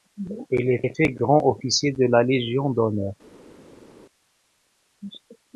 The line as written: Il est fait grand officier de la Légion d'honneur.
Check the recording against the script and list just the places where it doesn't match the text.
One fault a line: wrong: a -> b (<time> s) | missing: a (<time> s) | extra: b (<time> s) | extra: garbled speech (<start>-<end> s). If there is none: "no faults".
extra: est (0.8 s)